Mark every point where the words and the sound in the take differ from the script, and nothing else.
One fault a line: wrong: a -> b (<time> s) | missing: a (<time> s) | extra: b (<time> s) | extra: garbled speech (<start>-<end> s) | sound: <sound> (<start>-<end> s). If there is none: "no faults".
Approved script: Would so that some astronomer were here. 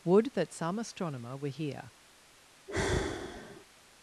missing: so (0.3 s)
sound: sigh (2.7-3.7 s)